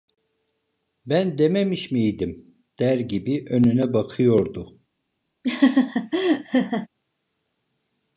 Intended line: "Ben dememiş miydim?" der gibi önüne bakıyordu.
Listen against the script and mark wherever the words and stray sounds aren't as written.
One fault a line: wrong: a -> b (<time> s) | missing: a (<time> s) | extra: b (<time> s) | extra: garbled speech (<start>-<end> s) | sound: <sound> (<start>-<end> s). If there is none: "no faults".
sound: laugh (5.4-6.9 s)